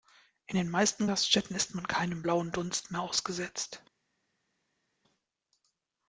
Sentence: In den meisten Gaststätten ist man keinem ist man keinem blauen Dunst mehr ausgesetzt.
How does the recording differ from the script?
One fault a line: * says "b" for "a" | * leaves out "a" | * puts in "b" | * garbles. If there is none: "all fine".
* leaves out "ist man keinem"